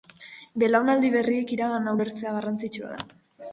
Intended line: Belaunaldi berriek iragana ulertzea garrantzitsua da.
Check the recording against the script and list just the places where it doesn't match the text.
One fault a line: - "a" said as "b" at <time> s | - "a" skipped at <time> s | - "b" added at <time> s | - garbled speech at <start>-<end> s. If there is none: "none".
none